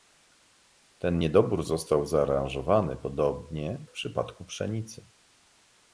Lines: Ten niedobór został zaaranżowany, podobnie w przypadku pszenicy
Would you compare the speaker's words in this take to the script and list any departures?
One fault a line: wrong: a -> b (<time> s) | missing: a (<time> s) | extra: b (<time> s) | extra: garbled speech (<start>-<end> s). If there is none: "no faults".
no faults